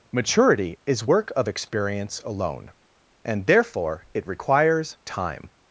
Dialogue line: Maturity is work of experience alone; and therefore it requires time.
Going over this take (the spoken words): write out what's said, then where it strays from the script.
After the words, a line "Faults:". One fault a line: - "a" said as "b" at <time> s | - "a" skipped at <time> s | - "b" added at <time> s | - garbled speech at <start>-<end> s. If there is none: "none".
Maturity is work of experience alone; and therefore it requires time.
Faults:
none